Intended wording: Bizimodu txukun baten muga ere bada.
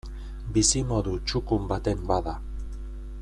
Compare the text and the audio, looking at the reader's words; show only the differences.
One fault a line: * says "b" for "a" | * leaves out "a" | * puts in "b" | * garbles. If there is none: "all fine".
* leaves out "muga ere"